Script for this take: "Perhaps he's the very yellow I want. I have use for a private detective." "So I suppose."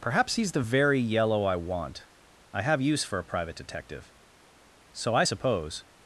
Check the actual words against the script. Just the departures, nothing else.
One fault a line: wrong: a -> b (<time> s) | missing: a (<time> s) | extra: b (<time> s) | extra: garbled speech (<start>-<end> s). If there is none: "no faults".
no faults